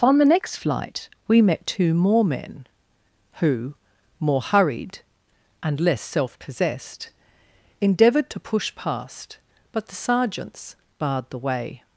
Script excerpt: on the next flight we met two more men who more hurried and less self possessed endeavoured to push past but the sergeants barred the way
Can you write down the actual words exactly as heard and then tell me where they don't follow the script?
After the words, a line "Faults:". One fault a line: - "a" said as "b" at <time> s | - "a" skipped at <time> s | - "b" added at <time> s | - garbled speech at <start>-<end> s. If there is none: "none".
on the next flight we met two more men who more hurried and less self possessed endeavoured to push past but the sergeants barred the way
Faults:
none